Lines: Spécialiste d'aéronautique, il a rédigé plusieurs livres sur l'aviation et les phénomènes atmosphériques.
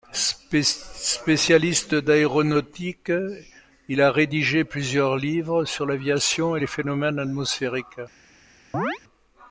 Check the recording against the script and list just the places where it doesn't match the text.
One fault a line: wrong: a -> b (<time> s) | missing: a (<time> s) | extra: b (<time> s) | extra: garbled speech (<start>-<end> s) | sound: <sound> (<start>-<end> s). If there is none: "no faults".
sound: chirp (8.7-9.0 s)